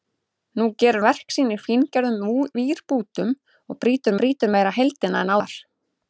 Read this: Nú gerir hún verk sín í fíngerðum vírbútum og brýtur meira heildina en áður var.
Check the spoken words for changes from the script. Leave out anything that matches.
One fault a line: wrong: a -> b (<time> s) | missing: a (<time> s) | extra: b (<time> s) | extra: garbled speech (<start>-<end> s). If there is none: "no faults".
missing: hún (1.0 s)
extra: brýtur (4.2 s)
missing: áður (5.4 s)